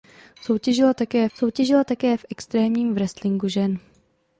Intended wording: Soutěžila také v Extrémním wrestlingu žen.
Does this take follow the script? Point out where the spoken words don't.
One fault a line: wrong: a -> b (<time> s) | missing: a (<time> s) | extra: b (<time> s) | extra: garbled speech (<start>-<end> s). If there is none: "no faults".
extra: soutěžila také (1.3 s)